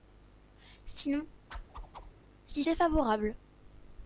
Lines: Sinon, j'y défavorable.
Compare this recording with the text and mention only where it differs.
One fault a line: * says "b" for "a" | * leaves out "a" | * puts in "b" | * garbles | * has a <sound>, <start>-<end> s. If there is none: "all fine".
* has a whoosh, 1.5-2.1 s